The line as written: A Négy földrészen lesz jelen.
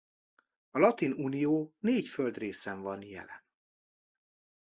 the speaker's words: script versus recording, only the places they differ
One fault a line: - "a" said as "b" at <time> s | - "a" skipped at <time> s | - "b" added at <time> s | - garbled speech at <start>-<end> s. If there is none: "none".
- "Latin Unió" added at 0.8 s
- "lesz" said as "van" at 2.8 s